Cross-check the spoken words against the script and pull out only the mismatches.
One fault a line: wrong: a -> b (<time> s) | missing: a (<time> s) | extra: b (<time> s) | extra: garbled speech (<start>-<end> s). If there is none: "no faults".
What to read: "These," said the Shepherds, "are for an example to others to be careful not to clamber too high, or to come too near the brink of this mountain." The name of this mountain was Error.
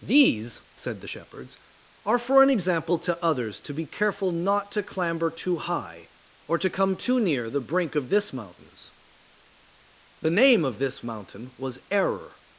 wrong: mountain -> mountains (8.3 s)